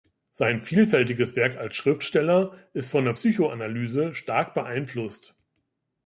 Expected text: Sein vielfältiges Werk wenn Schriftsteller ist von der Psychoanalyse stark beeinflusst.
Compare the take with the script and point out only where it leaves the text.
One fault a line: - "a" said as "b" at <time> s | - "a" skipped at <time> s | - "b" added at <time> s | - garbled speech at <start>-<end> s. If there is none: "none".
- "wenn" said as "als" at 1.6 s